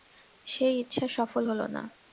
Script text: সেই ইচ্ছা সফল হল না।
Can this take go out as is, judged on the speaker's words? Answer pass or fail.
pass